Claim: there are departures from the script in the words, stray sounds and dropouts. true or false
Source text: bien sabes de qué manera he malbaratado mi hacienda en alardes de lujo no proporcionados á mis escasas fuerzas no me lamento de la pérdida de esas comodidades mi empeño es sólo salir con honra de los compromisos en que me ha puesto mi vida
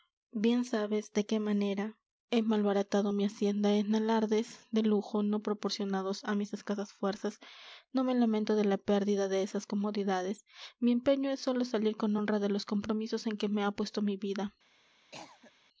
true